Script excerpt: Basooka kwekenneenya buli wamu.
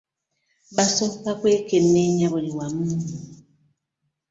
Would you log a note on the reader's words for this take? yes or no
no